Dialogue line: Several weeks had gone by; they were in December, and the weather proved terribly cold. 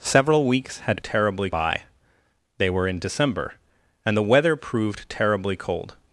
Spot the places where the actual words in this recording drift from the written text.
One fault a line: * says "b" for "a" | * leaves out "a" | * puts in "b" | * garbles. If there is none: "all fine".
* says "terribly" for "gone"